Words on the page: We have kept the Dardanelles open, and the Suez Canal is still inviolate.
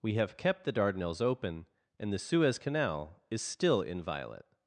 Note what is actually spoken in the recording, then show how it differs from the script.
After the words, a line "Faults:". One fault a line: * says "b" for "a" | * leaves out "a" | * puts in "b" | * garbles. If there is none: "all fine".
We have kept the Dardanelles open, and the Suez Canal is still inviolate.
Faults:
all fine